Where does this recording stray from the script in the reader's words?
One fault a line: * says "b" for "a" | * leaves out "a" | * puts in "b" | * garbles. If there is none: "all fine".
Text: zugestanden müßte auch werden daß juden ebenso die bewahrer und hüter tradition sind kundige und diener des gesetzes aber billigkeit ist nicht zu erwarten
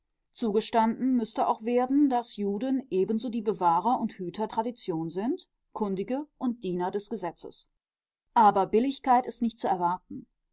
all fine